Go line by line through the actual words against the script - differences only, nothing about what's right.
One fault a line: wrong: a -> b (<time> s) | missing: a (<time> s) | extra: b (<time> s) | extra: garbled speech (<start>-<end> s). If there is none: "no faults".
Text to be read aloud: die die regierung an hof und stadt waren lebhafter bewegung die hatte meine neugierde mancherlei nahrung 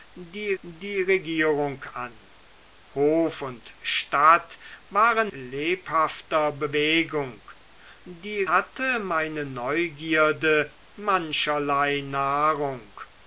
no faults